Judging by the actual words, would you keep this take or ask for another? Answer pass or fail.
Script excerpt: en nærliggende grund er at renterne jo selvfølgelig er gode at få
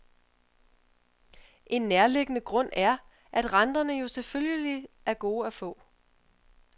pass